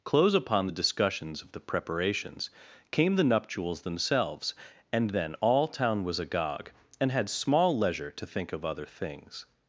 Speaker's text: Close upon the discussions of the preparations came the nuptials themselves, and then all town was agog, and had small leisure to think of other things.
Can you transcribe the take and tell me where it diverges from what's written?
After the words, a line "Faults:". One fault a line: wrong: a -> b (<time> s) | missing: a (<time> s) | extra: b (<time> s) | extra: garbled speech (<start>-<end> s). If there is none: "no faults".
Close upon the discussions of the preparations came the nuptials themselves, and then all town was agog, and had small leisure to think of other things.
Faults:
no faults